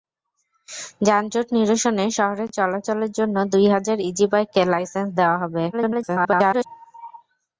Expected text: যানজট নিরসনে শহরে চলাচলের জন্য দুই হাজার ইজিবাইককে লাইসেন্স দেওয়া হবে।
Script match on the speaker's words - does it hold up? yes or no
no